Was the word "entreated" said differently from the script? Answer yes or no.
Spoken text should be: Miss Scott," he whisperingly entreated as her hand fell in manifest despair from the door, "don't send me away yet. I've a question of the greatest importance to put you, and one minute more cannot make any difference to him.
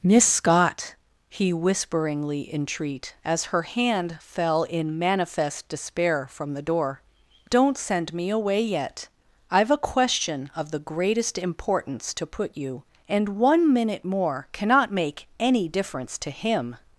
yes